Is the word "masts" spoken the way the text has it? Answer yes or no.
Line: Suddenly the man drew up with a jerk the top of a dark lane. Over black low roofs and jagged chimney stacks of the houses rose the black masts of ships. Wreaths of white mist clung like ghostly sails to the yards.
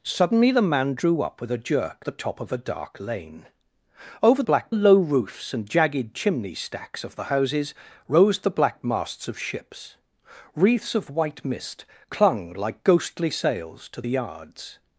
yes